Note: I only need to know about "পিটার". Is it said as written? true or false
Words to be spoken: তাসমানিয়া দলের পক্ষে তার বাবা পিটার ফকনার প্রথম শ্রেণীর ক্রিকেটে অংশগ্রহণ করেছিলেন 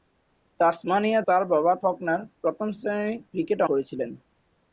false